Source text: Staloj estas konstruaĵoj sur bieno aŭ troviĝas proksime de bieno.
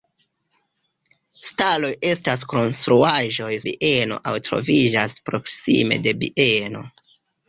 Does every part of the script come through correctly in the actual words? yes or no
no